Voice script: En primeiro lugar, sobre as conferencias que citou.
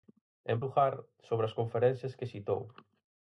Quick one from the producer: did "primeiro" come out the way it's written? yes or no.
no